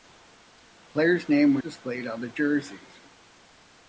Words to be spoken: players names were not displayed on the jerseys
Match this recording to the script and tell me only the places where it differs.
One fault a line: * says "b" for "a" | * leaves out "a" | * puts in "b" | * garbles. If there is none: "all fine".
* leaves out "not"